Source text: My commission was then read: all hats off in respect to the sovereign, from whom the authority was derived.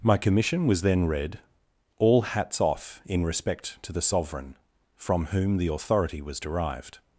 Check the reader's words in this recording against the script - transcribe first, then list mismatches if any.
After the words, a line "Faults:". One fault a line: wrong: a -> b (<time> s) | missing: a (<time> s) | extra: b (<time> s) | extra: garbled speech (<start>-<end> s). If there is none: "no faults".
My commission was then read: all hats off in respect to the sovereign, from whom the authority was derived.
Faults:
no faults